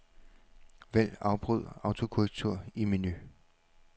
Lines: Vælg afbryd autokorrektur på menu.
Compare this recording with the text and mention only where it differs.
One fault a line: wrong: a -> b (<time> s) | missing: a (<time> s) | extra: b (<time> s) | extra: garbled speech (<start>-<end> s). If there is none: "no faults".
wrong: på -> i (2.7 s)